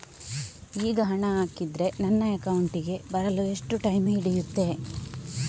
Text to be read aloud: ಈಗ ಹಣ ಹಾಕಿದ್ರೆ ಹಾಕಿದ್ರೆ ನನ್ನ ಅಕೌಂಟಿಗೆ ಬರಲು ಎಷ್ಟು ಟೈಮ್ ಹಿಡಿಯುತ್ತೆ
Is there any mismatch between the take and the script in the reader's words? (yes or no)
yes